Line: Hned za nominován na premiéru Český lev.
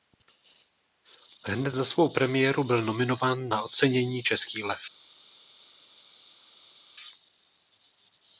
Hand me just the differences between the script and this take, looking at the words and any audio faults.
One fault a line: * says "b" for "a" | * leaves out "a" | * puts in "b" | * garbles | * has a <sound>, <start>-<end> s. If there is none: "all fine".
* puts in "svou premiéru byl"
* says "ocenění" for "premiéru"